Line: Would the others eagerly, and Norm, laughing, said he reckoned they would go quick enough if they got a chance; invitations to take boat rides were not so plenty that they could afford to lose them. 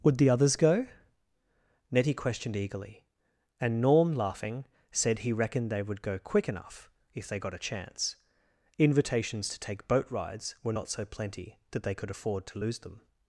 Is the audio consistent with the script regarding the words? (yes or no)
no